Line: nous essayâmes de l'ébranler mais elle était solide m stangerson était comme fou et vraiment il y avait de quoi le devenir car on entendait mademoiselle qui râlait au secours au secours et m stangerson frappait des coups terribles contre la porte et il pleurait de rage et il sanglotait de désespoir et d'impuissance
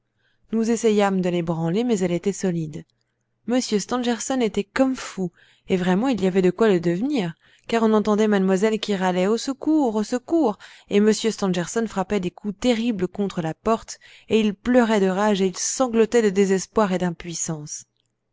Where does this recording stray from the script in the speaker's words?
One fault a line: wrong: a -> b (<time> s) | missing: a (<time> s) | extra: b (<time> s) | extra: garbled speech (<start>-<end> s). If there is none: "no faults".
no faults